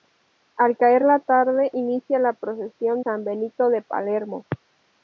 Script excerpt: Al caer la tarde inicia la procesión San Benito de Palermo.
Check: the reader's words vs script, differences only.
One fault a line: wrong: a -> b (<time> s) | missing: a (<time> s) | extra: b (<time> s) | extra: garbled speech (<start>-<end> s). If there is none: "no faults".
no faults